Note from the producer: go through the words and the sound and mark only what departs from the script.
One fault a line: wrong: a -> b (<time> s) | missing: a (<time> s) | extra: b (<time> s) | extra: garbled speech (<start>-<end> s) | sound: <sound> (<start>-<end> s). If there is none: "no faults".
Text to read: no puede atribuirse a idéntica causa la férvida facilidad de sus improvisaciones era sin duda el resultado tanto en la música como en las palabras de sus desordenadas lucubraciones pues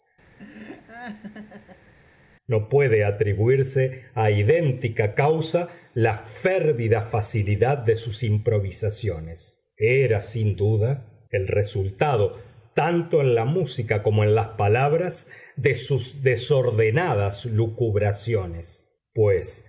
sound: laugh (0.4-1.9 s)